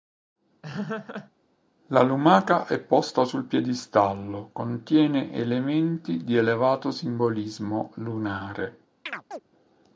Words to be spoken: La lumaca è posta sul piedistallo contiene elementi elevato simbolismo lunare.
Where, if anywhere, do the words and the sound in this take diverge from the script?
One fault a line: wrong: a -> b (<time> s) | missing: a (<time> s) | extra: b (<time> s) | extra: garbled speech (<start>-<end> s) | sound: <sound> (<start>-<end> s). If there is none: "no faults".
sound: laugh (0.6-1.3 s)
extra: di (6.2 s)
sound: chirp (9.1-9.4 s)